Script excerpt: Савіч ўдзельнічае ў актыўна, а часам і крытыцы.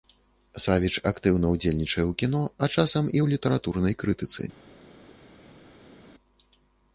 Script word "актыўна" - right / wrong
wrong